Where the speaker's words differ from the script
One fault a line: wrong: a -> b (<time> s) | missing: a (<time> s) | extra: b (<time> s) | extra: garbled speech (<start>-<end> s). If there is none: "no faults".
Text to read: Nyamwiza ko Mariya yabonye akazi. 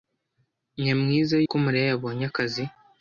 no faults